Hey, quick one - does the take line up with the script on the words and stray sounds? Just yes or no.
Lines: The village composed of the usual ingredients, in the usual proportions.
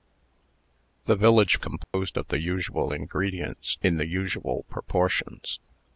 no